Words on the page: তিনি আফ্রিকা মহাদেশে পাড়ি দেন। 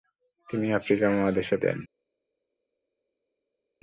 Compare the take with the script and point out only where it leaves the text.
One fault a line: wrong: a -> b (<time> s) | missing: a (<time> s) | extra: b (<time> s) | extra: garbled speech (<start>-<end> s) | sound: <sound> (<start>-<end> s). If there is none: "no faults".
missing: পাড়ি (1.6 s)